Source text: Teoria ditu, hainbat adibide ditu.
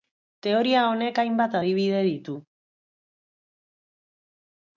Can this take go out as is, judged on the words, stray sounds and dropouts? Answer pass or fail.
fail